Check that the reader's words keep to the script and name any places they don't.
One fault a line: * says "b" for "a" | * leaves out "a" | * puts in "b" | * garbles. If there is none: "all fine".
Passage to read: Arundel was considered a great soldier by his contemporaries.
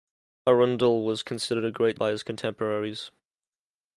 * leaves out "soldier"